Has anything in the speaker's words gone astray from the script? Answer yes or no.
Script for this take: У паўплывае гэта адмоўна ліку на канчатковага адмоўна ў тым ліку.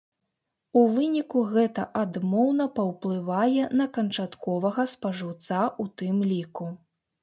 yes